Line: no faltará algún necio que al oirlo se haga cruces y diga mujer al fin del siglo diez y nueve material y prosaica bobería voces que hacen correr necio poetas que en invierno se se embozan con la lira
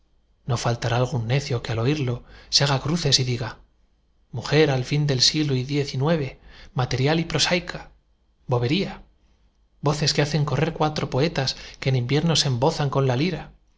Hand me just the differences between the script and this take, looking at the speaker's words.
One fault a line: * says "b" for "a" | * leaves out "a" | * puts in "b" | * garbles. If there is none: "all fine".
* says "cuatro" for "necio"
* leaves out "se"